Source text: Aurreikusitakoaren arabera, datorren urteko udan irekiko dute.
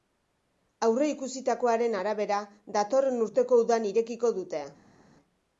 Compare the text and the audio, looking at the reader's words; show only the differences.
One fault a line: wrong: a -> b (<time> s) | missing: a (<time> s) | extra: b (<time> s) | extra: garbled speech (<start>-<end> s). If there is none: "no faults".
no faults